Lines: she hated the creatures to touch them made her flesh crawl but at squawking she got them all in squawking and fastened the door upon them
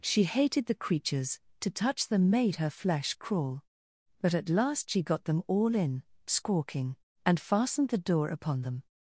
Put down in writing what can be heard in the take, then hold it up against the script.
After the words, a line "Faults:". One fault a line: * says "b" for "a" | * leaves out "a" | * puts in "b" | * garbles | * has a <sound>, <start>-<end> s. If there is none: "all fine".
she hated the creatures to touch them made her flesh crawl but at last she got them all in squawking and fastened the door upon them
Faults:
* says "last" for "squawking"